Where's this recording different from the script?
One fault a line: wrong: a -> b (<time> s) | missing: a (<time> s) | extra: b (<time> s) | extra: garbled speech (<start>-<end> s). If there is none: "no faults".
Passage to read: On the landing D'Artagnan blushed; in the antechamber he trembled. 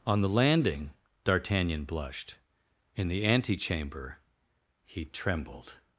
no faults